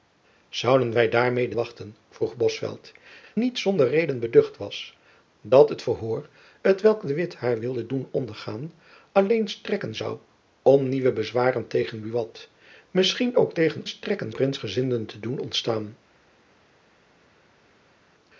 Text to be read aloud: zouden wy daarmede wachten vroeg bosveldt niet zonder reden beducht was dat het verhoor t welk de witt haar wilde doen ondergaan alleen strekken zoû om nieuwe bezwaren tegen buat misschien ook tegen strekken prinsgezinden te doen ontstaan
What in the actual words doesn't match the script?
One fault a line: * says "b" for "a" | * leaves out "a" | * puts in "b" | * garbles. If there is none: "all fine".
all fine